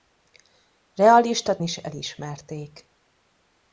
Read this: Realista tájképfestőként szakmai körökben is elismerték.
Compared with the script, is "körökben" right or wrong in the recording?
wrong